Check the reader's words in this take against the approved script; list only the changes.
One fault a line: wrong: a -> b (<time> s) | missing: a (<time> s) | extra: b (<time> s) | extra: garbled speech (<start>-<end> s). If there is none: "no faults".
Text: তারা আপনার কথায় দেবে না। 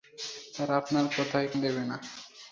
no faults